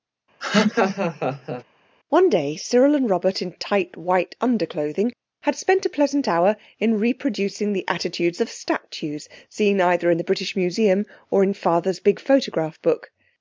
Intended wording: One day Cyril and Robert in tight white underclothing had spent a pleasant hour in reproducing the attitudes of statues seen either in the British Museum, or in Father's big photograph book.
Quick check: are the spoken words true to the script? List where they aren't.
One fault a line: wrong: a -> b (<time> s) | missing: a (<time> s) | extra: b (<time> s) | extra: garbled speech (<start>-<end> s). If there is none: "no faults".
no faults